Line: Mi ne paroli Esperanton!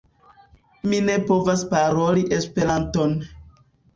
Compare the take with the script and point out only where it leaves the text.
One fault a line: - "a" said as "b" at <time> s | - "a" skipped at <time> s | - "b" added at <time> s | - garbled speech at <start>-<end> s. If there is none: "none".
- "povas" added at 1.3 s